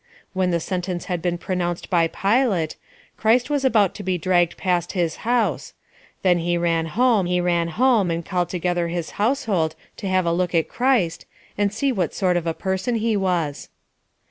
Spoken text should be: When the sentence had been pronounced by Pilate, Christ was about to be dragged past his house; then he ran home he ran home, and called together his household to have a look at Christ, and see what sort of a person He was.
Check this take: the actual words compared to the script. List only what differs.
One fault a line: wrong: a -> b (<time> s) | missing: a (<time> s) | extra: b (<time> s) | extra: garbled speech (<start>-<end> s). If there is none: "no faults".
no faults